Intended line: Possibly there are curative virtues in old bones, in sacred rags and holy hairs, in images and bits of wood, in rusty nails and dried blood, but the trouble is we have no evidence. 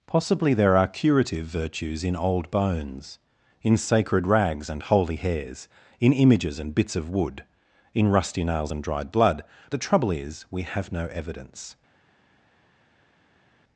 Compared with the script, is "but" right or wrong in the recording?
wrong